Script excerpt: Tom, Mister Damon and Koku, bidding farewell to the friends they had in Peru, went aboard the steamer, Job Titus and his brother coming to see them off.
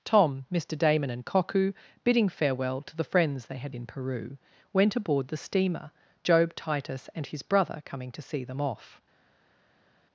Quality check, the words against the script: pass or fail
pass